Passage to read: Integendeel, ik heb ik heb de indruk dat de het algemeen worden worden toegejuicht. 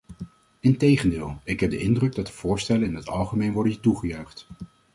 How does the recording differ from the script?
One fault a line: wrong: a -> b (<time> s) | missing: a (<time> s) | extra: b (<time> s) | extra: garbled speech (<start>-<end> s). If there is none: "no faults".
missing: ik heb (1.7 s)
extra: voorstellen in (2.3 s)
missing: worden (3.8 s)